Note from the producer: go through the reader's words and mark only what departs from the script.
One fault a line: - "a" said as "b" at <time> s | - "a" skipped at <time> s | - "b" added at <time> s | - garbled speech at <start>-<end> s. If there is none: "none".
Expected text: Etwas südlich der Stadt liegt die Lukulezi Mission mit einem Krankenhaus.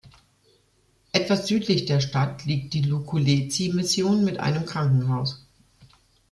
none